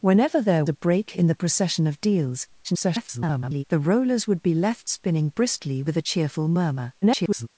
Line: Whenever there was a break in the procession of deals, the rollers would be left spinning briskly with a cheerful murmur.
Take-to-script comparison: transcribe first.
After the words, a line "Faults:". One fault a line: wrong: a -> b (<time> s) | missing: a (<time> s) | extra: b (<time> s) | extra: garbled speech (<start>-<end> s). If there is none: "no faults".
Whenever there a break in the procession of deals, [garbled] the rollers would be left spinning briskly with a cheerful murmur. [garbled]
Faults:
missing: was (0.7 s)
extra: garbled speech (2.6-3.6 s)
extra: garbled speech (7.0-7.5 s)